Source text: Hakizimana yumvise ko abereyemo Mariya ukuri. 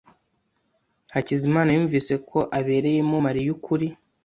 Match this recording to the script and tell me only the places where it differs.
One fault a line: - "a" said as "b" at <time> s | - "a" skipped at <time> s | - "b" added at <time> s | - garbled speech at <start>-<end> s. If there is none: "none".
none